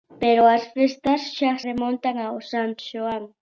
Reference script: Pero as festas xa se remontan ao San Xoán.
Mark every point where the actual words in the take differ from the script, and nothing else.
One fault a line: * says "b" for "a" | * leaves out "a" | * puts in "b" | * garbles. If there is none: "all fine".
* leaves out "se"